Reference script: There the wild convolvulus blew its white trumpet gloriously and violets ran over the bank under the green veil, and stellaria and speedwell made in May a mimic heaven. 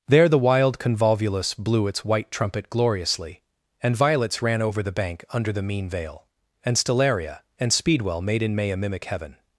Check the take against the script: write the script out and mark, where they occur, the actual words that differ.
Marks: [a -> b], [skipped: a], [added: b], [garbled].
There the wild convolvulus blew its white trumpet gloriously and violets ran over the bank under the [green -> mean] veil, and stellaria and speedwell made in May a mimic heaven.